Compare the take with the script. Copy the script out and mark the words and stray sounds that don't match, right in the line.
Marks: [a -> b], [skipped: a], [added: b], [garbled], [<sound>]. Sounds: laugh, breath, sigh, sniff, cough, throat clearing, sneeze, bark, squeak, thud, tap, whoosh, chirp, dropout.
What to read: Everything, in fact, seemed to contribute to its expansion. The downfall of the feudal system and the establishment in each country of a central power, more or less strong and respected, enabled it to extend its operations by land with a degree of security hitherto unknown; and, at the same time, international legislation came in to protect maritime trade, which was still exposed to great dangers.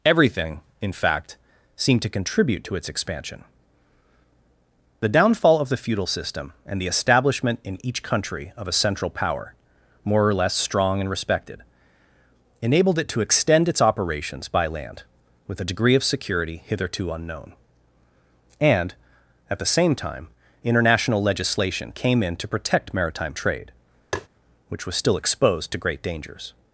Everything, in fact, seemed to contribute to its expansion. The downfall of the feudal system and the establishment in each country of a central power, more or less strong and respected, enabled it to extend its operations by land with a degree of security hitherto unknown; and, at the same time, international legislation came in to protect maritime trade, [tap] which was still exposed to great dangers.